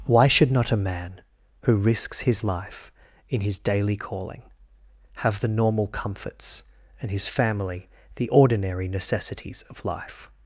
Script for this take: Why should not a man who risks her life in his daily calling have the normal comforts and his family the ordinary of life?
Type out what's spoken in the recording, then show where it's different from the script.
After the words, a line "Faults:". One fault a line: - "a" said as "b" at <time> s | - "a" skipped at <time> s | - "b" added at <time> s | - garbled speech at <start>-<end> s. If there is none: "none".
Why should not a man who risks his life in his daily calling have the normal comforts and his family the ordinary necessities of life?
Faults:
- "her" said as "his" at 2.2 s
- "necessities" added at 8.9 s